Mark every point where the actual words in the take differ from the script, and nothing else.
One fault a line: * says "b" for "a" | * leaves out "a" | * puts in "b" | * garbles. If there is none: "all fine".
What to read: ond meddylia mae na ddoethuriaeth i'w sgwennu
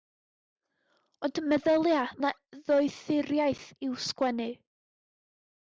* leaves out "mae"